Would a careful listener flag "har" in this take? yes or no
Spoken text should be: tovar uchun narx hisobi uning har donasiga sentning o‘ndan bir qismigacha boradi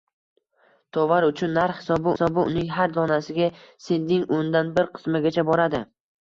no